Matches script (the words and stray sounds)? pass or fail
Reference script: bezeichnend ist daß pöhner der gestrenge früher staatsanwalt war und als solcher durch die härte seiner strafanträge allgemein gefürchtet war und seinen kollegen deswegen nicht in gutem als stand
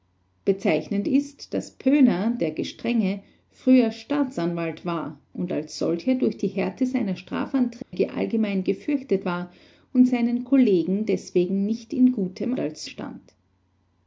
fail